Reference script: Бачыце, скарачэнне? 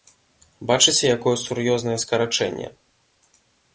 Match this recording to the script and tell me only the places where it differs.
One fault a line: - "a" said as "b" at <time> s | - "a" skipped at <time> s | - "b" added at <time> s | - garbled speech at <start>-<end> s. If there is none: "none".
- "якое сур'ёзнае" added at 1.2 s